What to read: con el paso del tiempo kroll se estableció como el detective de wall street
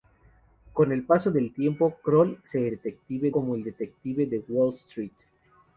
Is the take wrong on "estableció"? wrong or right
wrong